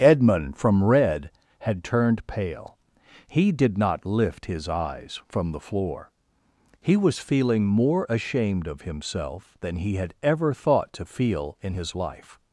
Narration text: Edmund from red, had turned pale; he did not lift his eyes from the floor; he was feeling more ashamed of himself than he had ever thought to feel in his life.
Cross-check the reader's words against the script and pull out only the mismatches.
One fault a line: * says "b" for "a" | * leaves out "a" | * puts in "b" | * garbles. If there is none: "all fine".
all fine